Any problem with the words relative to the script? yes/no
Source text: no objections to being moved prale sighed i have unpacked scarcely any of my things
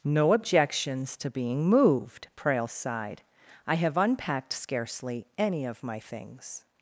no